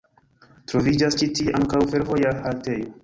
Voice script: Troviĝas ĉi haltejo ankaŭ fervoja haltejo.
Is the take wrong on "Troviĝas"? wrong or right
right